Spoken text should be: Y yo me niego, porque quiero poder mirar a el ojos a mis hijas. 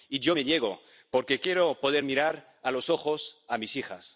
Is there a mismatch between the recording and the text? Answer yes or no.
yes